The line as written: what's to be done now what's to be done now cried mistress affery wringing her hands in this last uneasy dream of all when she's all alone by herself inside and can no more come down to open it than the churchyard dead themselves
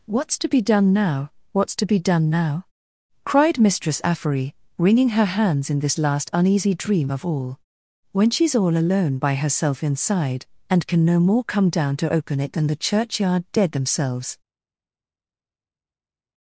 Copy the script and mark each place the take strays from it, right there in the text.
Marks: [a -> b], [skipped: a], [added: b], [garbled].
what's to be done now what's to be done now cried mistress affery wringing her hands in this last uneasy dream of all when she's all alone by herself inside and can no more come down to open it than the churchyard dead themselves